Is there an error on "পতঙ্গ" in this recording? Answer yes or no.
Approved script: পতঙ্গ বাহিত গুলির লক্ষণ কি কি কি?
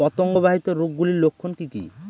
no